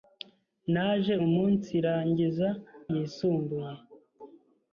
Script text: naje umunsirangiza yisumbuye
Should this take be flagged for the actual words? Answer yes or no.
no